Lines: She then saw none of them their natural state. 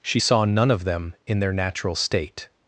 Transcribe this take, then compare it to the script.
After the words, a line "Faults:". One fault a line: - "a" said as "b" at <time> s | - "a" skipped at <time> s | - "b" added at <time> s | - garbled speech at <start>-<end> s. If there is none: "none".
She saw none of them in their natural state.
Faults:
- "then" skipped at 0.2 s
- "in" added at 1.3 s